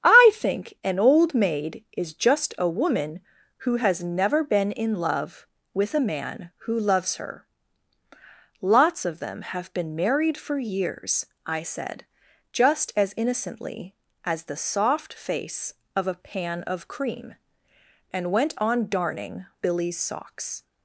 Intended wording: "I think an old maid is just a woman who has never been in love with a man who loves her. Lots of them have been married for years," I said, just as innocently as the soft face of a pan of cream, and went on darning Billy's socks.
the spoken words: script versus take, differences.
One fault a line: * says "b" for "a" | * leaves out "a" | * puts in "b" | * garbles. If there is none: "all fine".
all fine